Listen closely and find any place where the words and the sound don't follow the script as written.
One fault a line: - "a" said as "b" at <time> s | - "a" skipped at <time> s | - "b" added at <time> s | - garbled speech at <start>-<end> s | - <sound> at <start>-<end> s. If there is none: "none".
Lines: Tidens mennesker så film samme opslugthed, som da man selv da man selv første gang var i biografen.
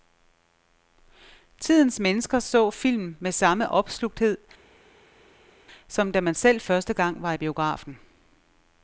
- "med" added at 3.2 s
- "da man selv" skipped at 6.6 s